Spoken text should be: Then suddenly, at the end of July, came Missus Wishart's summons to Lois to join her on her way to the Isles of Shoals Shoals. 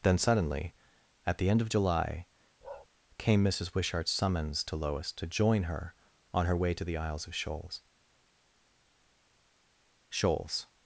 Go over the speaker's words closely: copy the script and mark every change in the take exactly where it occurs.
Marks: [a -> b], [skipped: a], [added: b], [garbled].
Then suddenly, at the end of July, came Missus Wishart's summons to Lois to join her on her way to the Isles of Shoals Shoals.